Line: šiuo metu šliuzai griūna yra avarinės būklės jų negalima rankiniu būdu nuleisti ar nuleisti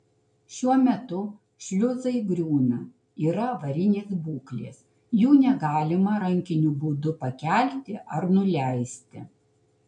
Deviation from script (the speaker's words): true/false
true